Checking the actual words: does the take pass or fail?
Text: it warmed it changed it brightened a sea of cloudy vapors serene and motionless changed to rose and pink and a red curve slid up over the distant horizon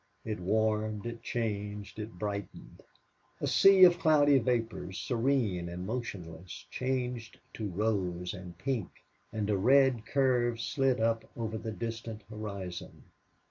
pass